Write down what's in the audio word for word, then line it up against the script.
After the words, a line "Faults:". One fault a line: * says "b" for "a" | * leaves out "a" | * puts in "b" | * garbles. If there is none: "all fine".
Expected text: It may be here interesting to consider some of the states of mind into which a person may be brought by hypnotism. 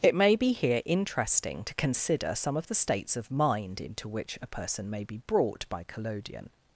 It may be here interesting to consider some of the states of mind into which a person may be brought by collodion.
Faults:
* says "collodion" for "hypnotism"